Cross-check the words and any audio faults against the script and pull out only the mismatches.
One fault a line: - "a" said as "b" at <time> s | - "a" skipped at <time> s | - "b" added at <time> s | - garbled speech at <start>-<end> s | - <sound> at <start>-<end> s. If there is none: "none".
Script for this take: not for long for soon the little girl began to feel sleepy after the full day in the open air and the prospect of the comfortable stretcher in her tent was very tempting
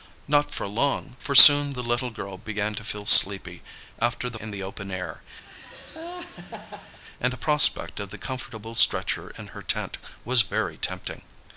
- "full day" skipped at 4.4 s
- laugh at 5.4-7.0 s